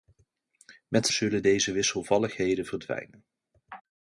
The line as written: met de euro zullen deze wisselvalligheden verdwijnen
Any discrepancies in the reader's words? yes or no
yes